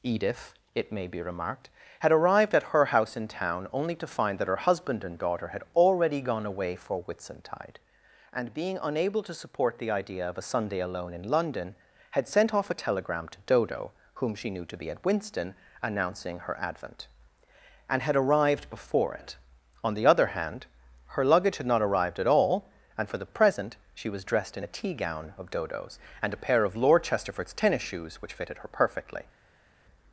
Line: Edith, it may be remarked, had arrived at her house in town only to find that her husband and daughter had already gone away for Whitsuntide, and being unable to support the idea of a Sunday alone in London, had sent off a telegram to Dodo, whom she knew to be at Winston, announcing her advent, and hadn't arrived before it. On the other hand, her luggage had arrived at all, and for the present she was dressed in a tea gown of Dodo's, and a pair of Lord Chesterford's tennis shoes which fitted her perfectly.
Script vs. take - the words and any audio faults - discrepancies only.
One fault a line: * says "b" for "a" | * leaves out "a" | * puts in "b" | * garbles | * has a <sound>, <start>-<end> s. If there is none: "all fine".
* says "had" for "hadn't"
* puts in "not"